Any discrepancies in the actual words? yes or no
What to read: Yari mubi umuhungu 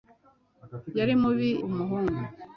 no